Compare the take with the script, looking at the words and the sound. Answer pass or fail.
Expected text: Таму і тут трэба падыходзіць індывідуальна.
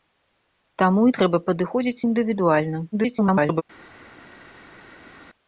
fail